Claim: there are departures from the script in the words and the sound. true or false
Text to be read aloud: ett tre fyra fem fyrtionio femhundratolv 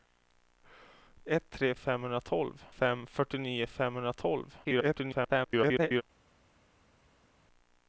true